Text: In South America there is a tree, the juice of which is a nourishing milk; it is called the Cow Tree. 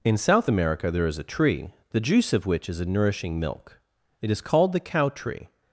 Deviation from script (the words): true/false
false